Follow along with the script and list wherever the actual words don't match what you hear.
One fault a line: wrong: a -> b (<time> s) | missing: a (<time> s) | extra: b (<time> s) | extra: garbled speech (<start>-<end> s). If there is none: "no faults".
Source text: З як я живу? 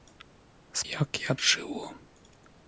no faults